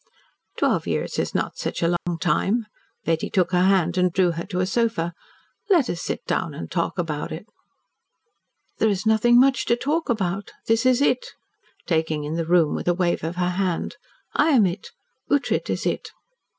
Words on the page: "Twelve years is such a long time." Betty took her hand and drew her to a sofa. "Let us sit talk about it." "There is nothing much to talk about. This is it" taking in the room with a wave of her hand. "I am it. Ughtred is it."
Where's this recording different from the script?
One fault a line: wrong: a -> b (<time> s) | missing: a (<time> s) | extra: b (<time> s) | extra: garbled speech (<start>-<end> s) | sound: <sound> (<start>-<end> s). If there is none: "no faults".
extra: not (1.4 s)
sound: dropout (2.0-2.1 s)
extra: down and (6.2 s)